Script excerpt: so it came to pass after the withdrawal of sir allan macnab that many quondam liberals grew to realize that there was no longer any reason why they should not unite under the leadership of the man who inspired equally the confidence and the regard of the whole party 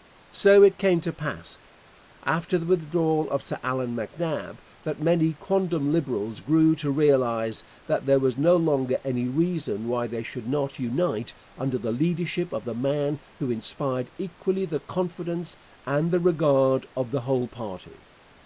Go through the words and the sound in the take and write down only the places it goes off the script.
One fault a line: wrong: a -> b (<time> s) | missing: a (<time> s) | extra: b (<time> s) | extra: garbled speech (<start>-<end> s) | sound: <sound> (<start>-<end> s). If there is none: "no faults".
no faults